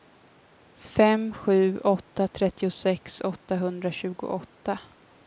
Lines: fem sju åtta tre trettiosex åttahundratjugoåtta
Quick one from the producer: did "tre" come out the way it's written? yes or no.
no